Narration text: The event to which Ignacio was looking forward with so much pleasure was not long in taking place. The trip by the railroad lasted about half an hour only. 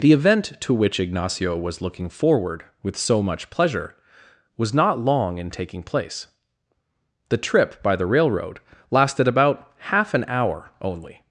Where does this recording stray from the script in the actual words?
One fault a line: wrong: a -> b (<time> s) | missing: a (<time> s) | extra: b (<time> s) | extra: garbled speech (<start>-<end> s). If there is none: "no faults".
no faults